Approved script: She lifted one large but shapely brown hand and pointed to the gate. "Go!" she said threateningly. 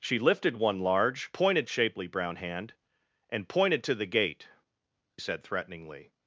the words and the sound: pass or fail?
fail